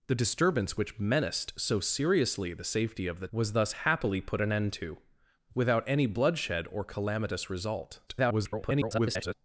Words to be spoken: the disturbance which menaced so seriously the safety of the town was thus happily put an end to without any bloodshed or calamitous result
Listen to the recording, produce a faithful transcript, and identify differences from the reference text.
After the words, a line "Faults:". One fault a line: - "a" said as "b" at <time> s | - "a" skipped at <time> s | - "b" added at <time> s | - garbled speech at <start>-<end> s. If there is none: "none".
the disturbance which menaced so seriously the safety of the was thus happily put an end to without any bloodshed or calamitous result [garbled]
Faults:
- "town" skipped at 3.3 s
- garbled speech at 8.1-9.3 s